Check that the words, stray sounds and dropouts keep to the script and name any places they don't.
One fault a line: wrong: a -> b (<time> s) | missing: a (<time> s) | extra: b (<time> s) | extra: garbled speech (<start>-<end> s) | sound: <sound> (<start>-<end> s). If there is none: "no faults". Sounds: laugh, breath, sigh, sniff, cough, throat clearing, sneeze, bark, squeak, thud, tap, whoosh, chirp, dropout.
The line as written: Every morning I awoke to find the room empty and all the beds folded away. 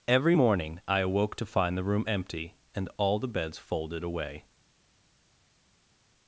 no faults